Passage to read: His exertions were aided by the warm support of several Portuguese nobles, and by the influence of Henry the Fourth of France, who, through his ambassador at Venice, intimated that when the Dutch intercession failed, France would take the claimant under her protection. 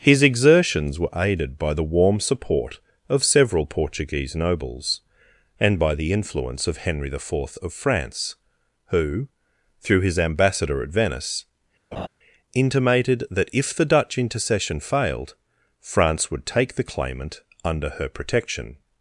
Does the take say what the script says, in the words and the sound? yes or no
no